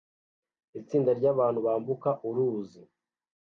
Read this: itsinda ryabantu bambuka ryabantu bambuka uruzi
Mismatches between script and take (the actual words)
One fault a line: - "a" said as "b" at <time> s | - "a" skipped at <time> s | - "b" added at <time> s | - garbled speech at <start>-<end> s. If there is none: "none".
- "ryabantu bambuka" skipped at 2.1 s